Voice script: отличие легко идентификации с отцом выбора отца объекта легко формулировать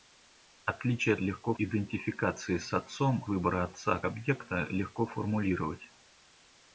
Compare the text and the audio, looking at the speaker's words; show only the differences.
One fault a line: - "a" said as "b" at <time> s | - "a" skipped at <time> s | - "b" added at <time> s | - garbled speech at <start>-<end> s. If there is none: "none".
none